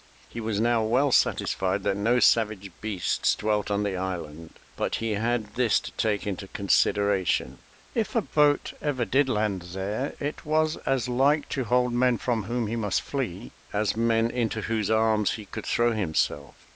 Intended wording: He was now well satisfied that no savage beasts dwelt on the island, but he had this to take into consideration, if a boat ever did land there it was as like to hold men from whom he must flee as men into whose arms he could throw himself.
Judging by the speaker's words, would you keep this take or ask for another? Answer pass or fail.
pass